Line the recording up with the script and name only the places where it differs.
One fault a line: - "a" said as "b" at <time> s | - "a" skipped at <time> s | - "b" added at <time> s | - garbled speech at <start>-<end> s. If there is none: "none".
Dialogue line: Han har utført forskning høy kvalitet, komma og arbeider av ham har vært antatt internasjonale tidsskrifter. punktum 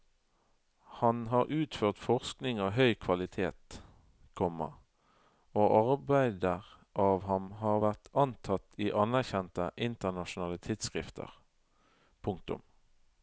- "av" added at 2.6 s
- "i anerkjente" added at 8.8 s